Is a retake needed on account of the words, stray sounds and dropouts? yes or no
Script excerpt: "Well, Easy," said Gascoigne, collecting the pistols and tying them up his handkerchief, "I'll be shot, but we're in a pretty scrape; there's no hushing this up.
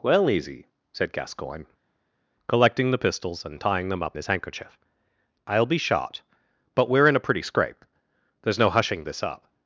no